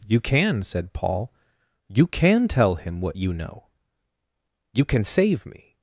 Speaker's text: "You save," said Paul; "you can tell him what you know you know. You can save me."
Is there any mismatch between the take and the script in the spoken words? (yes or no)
yes